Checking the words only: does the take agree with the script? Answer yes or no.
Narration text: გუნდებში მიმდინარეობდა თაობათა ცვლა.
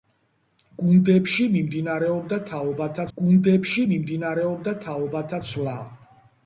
no